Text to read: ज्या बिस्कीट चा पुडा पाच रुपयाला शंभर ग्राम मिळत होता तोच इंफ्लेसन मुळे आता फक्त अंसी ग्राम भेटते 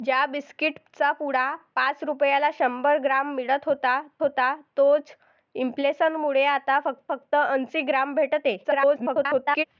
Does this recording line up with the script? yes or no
no